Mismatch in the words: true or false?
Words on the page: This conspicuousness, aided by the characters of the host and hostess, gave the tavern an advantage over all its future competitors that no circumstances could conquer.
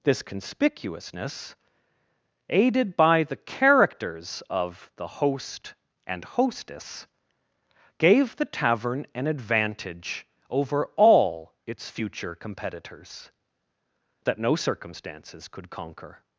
false